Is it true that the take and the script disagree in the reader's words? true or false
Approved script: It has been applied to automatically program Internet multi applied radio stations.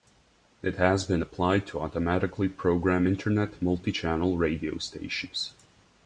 true